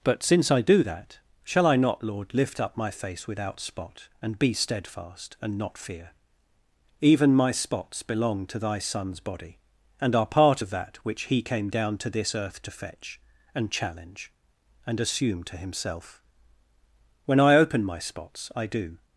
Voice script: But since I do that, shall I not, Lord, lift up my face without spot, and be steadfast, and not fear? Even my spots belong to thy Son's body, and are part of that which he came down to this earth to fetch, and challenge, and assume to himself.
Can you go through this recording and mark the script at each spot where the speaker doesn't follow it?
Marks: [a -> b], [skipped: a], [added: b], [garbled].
But since I do that, shall I not, Lord, lift up my face without spot, and be steadfast, and not fear? Even my spots belong to thy Son's body, and are part of that which he came down to this earth to fetch, and challenge, and assume to himself. [added: When I open my spots I do]